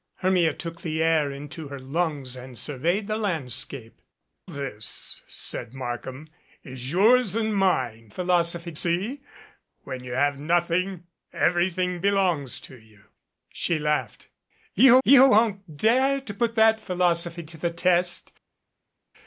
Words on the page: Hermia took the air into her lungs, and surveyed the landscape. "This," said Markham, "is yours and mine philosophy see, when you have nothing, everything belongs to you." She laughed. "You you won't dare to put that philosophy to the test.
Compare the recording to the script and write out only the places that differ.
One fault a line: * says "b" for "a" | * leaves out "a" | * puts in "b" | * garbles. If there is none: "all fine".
all fine